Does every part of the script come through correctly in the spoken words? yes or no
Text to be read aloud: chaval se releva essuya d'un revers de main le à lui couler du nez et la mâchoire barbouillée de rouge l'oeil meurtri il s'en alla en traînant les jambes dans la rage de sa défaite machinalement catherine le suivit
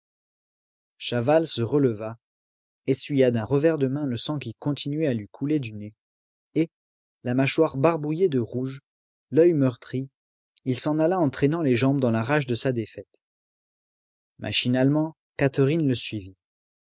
no